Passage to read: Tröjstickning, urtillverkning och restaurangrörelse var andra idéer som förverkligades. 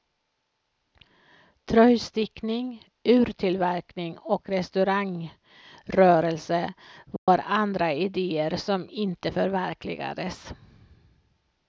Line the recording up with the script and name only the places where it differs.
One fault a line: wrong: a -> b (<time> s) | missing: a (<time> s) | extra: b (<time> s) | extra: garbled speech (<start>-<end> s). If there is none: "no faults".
extra: inte (8.9 s)